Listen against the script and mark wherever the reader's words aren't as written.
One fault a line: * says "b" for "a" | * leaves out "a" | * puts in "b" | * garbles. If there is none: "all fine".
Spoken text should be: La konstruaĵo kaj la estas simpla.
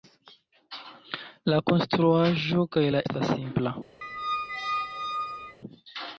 all fine